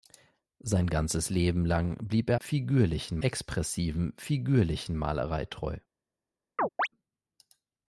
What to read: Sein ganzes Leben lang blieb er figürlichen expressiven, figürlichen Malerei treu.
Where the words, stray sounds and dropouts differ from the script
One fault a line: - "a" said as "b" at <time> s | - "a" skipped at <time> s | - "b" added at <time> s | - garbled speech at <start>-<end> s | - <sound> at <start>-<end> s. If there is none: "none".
- chirp at 6.6-6.9 s